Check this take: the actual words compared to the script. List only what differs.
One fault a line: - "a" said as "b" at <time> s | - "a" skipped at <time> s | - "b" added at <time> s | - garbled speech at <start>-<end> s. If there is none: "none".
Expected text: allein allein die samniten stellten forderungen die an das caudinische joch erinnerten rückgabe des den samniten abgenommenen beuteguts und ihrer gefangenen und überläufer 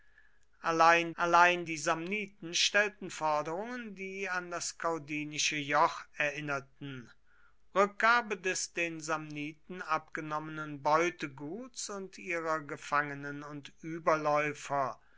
none